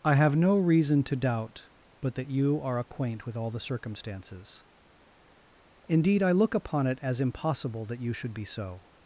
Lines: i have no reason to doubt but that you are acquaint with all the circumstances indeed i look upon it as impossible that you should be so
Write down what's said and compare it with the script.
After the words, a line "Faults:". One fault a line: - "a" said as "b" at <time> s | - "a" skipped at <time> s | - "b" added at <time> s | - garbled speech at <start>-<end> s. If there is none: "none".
i have no reason to doubt but that you are acquaint with all the circumstances indeed i look upon it as impossible that you should be so
Faults:
none